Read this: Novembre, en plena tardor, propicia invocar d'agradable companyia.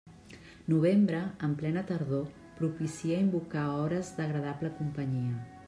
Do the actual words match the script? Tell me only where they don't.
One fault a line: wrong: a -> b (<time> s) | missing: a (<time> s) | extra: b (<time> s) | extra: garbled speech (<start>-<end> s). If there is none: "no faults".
extra: hores (3.8 s)